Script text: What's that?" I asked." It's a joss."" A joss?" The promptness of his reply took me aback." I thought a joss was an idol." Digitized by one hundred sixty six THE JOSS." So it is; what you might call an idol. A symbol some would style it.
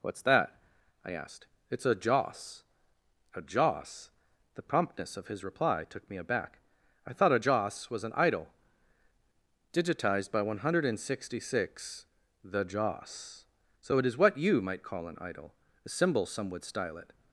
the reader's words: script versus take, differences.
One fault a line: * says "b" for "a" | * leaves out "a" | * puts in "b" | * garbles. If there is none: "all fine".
all fine